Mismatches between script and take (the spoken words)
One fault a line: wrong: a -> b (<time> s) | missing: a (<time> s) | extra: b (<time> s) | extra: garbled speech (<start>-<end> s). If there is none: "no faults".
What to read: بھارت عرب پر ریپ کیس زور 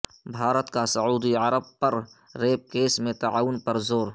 extra: کا سعودی (0.7 s)
extra: میں تعاون پر (3.0 s)